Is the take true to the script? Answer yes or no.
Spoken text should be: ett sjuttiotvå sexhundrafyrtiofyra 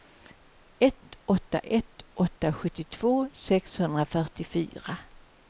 no